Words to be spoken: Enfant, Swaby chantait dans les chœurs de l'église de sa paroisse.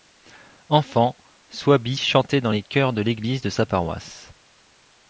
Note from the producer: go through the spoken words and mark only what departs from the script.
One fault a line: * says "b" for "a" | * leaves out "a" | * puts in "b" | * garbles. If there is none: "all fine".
all fine